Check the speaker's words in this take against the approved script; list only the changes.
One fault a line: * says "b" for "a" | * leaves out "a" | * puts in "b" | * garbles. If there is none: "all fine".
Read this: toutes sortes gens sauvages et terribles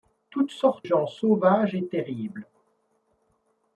all fine